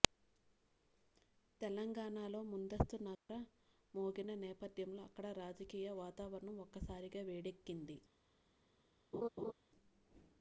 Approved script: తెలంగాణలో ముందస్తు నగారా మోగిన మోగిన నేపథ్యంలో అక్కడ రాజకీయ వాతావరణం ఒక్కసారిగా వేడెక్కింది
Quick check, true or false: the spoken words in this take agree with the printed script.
false